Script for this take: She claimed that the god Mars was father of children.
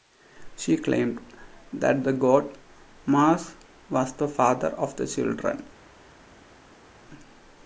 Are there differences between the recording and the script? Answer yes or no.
yes